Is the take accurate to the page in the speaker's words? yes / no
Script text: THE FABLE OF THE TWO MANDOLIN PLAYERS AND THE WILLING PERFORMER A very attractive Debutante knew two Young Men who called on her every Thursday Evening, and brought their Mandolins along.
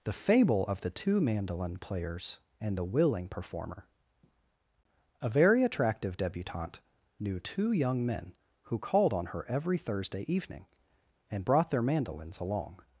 yes